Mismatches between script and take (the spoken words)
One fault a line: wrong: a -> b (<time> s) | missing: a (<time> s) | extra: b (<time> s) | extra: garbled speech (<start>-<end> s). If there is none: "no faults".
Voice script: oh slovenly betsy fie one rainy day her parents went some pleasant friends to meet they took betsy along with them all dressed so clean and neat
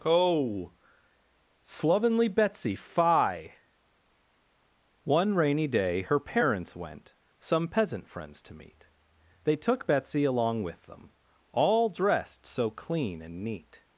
wrong: pleasant -> peasant (7.7 s)